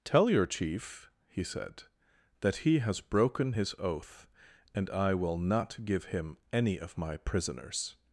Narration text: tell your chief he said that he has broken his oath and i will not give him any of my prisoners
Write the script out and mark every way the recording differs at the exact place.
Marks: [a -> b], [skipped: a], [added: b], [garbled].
tell your chief he said that he has broken his oath and i will not give him any of my prisoners